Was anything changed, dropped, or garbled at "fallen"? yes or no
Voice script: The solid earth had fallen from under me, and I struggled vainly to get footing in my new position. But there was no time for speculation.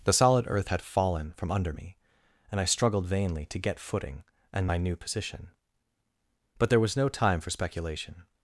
no